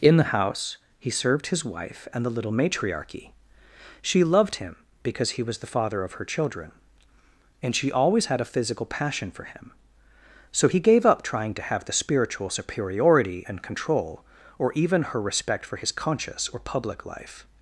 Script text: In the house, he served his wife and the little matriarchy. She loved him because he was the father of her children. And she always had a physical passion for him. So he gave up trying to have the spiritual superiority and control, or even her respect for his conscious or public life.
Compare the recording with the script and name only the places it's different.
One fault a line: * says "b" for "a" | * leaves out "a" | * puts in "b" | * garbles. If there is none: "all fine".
all fine